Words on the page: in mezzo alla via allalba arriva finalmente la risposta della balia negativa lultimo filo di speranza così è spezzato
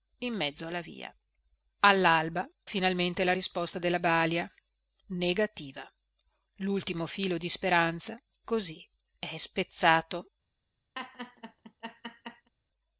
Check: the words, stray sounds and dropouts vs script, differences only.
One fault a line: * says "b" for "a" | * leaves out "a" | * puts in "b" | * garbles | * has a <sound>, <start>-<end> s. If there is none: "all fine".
* leaves out "arriva"
* has a laugh, 10.9-12.5 s